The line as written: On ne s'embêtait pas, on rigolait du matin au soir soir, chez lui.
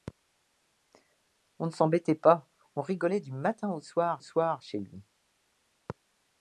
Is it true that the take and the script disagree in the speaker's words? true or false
false